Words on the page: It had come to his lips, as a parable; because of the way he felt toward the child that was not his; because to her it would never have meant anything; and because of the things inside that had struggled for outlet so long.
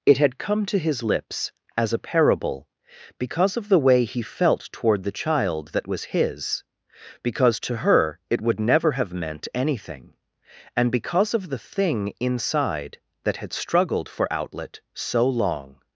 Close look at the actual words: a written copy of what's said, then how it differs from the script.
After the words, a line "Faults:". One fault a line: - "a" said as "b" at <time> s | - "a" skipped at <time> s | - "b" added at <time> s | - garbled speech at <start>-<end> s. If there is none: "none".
It had come to his lips, as a parable; because of the way he felt toward the child that was his; because to her it would never have meant anything; and because of the thing inside that had struggled for outlet so long.
Faults:
- "not" skipped at 6.0 s
- "things" said as "thing" at 11.6 s